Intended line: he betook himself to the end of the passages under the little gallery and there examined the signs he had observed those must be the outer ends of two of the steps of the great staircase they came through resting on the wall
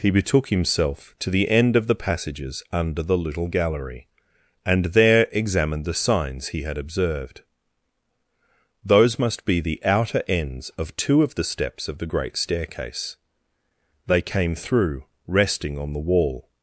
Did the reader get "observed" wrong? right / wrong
right